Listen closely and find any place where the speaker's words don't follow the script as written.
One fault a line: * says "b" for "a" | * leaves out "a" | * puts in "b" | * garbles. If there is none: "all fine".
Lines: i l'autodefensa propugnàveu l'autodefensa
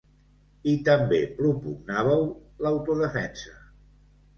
* says "també" for "l'autodefensa"